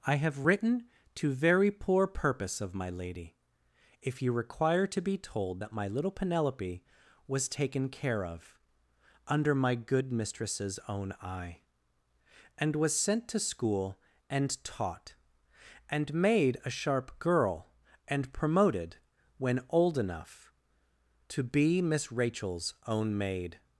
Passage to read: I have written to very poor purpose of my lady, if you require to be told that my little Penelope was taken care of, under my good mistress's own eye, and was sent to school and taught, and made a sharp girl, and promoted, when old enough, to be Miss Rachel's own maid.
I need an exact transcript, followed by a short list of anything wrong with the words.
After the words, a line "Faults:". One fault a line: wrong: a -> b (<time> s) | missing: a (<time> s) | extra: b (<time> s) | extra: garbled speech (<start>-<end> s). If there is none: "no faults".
I have written to very poor purpose of my lady, if you require to be told that my little Penelope was taken care of, under my good mistress's own eye, and was sent to school and taught, and made a sharp girl, and promoted, when old enough, to be Miss Rachel's own maid.
Faults:
no faults